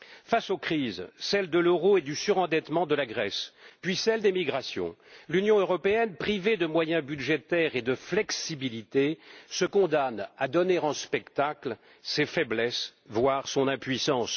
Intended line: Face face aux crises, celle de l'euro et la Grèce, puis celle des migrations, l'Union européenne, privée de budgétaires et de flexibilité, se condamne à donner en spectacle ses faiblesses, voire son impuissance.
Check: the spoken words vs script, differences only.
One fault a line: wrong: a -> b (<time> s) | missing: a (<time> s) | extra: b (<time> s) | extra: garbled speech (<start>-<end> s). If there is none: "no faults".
missing: face (0.5 s)
extra: du surendettement de (2.0 s)
extra: moyens (6.7 s)